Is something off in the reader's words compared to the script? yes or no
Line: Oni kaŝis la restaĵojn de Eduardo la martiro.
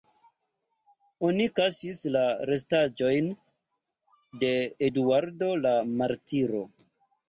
no